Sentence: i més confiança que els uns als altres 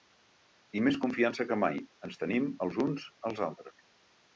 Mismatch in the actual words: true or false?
true